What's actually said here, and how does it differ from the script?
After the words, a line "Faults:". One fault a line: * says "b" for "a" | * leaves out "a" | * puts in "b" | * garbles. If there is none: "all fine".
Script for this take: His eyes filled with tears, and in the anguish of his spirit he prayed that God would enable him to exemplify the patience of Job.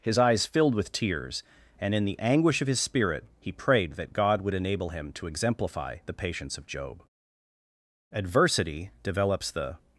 His eyes filled with tears, and in the anguish of his spirit he prayed that God would enable him to exemplify the patience of Job. Adversity develops the
Faults:
* puts in "Adversity develops the"